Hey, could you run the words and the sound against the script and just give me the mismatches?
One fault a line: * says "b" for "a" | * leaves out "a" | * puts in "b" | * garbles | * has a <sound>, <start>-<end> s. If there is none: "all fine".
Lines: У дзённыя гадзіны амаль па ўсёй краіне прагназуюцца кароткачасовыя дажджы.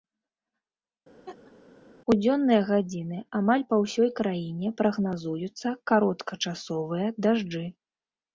* has a laugh, 1.3-1.5 s